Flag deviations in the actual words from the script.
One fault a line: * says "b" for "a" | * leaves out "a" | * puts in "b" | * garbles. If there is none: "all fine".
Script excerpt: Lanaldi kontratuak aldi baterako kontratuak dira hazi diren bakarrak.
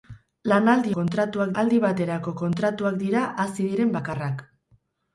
all fine